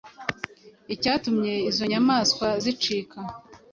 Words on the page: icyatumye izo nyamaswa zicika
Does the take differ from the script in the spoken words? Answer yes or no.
no